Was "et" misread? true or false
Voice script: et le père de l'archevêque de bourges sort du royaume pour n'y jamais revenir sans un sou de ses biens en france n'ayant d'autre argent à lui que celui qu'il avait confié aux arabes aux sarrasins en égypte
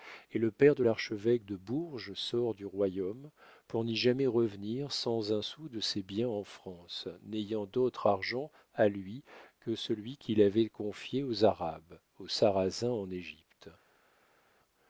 false